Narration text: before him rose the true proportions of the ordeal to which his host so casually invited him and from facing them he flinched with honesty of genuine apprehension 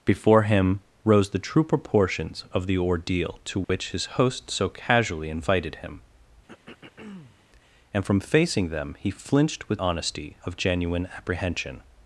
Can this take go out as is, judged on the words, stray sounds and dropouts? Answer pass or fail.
fail